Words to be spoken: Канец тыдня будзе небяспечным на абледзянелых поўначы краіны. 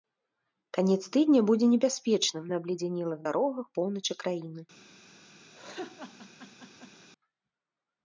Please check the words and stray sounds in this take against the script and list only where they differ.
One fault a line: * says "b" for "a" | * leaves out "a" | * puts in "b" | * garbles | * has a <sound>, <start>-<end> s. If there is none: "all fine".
* puts in "дарогах"
* has a laugh, 5.5-7.1 s